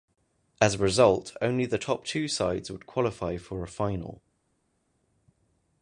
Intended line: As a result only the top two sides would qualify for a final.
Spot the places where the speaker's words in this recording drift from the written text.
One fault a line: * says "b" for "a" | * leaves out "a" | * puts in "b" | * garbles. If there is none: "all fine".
all fine